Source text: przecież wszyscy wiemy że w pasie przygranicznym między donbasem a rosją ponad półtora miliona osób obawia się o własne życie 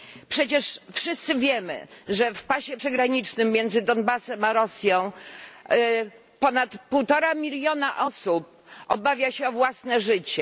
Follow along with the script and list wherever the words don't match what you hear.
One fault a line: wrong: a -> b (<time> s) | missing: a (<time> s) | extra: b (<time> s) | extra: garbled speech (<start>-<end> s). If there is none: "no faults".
no faults